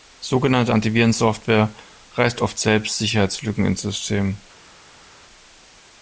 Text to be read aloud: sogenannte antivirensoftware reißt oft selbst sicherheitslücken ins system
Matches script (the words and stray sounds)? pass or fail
pass